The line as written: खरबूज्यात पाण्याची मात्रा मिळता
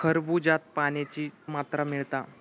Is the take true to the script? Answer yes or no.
yes